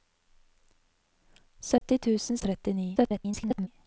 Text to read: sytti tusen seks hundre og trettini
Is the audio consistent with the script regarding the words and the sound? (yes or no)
no